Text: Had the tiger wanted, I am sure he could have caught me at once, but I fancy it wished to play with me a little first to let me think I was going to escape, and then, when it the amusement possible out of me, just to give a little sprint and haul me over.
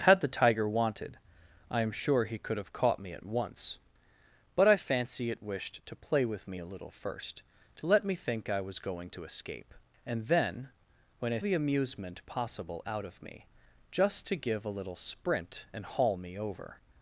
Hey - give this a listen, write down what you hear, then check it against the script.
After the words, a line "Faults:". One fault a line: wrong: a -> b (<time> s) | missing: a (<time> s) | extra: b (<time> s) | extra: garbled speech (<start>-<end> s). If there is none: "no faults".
Had the tiger wanted, I am sure he could have caught me at once, but I fancy it wished to play with me a little first to let me think I was going to escape, and then, when it the amusement possible out of me, just to give a little sprint and haul me over.
Faults:
no faults